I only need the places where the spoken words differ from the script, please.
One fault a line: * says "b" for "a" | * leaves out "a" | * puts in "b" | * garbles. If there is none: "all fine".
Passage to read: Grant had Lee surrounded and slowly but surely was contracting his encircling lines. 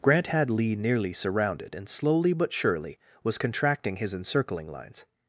* puts in "nearly"